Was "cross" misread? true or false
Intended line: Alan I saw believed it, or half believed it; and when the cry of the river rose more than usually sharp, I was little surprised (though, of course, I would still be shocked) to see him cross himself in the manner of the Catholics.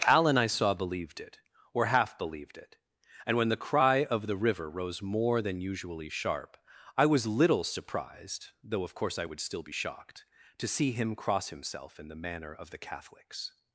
false